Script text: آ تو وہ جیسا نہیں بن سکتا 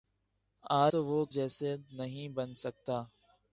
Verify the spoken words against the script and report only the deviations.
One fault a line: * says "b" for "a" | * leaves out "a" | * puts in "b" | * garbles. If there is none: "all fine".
all fine